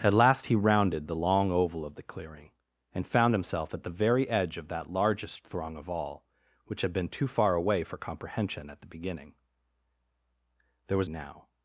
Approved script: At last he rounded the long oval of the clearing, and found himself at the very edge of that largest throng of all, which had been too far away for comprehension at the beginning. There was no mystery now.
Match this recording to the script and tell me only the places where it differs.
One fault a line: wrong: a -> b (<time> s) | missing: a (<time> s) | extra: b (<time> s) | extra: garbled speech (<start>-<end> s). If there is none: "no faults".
missing: no mystery (11.1 s)